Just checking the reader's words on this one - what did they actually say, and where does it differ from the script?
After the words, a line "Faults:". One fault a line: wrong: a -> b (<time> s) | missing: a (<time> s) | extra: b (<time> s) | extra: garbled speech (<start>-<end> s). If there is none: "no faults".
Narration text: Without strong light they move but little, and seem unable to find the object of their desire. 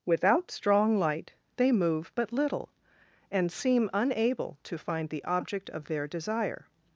Without strong light they move but little, and seem unable to find the object of their desire.
Faults:
no faults